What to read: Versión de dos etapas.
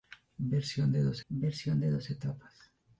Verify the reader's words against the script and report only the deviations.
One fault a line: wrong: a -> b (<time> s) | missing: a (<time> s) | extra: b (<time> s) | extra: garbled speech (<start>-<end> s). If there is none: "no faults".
extra: versión de dos (1.3 s)